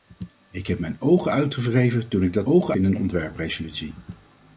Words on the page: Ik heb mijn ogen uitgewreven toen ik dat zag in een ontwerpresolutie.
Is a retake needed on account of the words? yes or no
yes